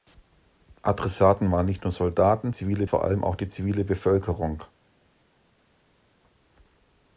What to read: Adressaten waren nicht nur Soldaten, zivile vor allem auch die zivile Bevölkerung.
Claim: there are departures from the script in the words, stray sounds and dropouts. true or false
false